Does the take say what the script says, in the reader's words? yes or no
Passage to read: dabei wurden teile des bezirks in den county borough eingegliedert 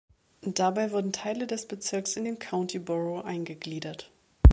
yes